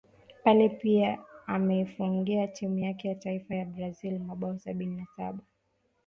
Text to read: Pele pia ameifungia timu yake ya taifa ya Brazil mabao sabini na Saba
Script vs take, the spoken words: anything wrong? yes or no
no